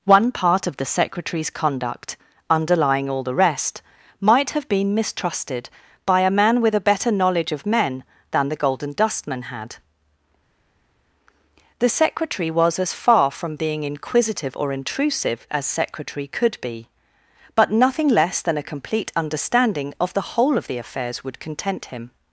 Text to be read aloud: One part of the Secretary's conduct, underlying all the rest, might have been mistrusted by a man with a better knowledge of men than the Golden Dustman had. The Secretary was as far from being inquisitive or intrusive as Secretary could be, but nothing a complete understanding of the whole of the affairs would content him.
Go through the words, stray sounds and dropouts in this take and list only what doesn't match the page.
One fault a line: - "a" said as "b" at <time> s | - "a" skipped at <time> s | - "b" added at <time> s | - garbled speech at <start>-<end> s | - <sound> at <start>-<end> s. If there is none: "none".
- "less than" added at 18.1 s